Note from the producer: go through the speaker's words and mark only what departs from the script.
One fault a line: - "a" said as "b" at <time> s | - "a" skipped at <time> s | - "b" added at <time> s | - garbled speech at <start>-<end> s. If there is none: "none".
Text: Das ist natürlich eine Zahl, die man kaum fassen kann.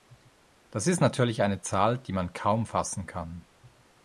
none